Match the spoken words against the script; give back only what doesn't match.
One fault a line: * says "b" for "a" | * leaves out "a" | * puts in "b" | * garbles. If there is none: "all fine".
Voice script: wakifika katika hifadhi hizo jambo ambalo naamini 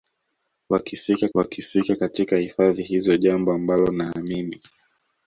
* puts in "wakifika"